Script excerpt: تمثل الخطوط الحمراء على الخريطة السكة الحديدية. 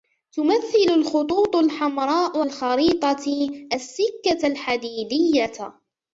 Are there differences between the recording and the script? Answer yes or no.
yes